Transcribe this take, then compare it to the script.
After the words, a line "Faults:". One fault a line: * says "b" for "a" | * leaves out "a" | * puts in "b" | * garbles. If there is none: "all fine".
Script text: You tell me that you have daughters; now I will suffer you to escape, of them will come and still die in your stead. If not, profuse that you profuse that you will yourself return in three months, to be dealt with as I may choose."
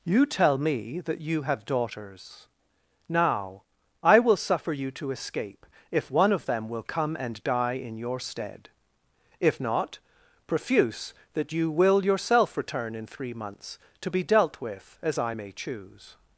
You tell me that you have daughters; now I will suffer you to escape, if one of them will come and die in your stead. If not, profuse that you will yourself return in three months, to be dealt with as I may choose."
Faults:
* puts in "if one"
* leaves out "still"
* leaves out "profuse that you"